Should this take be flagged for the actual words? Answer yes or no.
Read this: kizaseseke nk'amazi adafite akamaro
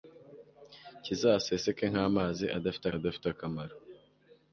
yes